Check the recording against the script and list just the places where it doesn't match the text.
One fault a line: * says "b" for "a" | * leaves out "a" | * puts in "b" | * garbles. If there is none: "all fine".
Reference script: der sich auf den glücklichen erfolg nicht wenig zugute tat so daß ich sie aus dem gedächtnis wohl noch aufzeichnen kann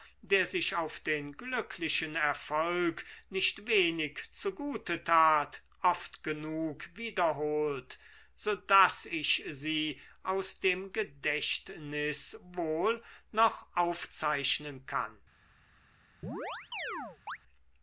* puts in "oft genug wiederholt"